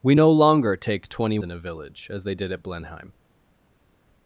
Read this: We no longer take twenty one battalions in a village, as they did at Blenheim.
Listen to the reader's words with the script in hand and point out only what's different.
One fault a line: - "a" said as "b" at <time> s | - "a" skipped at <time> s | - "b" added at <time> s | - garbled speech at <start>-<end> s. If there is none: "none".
- "one battalions" skipped at 1.4 s